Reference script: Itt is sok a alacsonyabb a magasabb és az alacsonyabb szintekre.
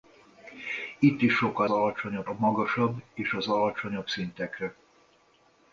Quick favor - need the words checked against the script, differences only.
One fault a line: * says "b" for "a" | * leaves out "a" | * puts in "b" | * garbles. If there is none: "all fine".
all fine